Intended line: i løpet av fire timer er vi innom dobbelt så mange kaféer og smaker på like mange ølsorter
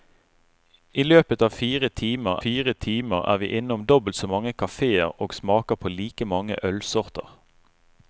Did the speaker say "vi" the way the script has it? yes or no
yes